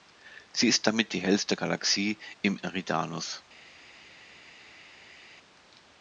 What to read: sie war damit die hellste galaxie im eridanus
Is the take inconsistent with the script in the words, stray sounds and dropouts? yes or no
yes